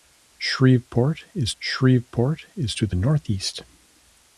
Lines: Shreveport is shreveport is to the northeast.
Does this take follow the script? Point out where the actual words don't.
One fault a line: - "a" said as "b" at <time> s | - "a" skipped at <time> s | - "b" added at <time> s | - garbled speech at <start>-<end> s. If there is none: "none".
none